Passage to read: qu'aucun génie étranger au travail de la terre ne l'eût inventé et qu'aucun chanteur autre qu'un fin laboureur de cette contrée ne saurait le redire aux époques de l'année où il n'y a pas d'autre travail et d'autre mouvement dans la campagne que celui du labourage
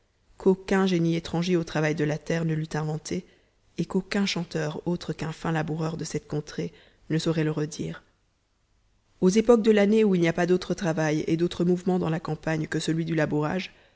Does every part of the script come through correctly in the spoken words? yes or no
yes